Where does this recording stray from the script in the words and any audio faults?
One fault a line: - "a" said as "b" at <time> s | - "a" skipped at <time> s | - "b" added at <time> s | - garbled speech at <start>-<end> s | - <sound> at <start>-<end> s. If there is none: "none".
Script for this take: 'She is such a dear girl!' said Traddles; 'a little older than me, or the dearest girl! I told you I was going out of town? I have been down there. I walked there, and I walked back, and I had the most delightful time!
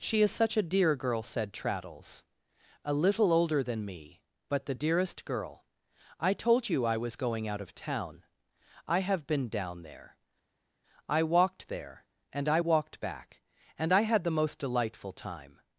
- "or" said as "but" at 4.5 s